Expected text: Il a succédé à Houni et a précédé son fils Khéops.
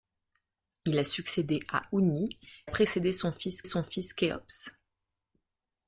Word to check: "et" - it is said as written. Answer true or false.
false